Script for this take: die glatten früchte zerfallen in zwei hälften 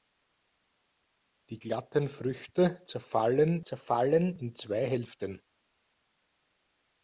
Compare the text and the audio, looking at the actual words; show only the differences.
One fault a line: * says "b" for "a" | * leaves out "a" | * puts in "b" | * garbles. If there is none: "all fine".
* puts in "zerfallen"